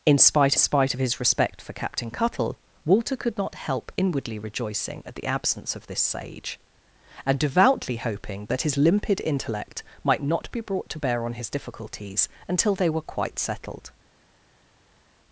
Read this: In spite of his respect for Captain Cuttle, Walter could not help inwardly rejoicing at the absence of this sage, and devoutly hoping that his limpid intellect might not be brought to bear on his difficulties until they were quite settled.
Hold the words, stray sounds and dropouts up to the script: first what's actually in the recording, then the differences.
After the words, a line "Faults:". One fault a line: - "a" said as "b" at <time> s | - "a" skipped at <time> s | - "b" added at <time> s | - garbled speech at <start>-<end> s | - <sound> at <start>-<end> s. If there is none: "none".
In spite spite of his respect for Captain Cuttle, Walter could not help inwardly rejoicing at the absence of this sage, and devoutly hoping that his limpid intellect might not be brought to bear on his difficulties until they were quite settled.
Faults:
- "spite" added at 0.5 s